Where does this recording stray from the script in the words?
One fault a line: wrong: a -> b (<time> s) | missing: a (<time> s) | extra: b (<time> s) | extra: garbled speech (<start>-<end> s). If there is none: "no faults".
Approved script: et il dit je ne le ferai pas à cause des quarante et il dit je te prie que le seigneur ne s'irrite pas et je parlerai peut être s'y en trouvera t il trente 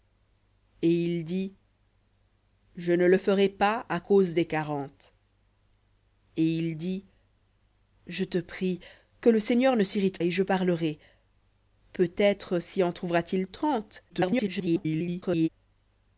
missing: pas (10.2 s)
extra: garbled speech (14.1-15.5 s)